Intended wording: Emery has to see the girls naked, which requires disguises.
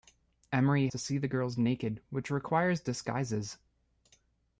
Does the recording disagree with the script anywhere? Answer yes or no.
yes